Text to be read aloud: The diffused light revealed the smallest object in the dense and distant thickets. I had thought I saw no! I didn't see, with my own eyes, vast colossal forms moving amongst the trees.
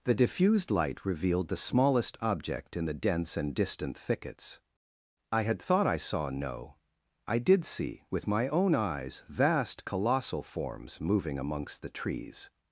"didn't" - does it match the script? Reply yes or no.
no